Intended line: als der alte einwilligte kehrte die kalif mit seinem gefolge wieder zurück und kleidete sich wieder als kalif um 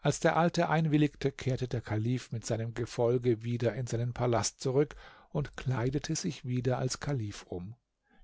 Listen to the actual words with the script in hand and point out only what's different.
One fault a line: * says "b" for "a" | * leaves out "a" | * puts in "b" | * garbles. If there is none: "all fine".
* says "der" for "die"
* puts in "in seinen palast"